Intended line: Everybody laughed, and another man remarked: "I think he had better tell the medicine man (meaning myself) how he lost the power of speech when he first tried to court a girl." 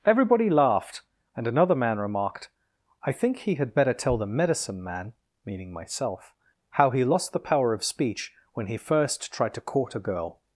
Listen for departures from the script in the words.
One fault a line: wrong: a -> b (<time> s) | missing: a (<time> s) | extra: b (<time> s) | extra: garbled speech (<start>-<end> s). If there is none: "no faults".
no faults